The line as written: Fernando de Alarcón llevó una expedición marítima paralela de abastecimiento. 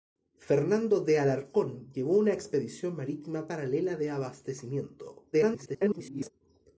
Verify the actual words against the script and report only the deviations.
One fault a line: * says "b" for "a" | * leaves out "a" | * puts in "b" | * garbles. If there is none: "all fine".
* garbles